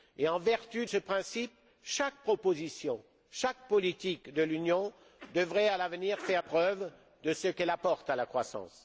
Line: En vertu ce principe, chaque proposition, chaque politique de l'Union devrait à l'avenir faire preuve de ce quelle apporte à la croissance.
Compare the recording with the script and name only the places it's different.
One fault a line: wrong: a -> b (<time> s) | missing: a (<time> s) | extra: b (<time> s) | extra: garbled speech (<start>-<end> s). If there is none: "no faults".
no faults